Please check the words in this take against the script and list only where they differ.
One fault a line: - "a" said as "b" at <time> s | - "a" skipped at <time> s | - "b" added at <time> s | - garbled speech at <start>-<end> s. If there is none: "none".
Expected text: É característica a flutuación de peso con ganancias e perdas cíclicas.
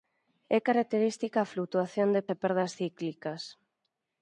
- "peso con ganancias" skipped at 2.2 s